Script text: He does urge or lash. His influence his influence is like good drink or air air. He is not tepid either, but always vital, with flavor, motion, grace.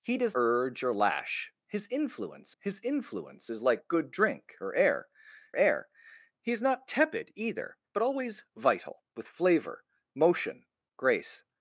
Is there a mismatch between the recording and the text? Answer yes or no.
no